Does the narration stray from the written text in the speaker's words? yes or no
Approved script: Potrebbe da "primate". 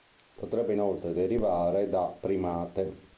yes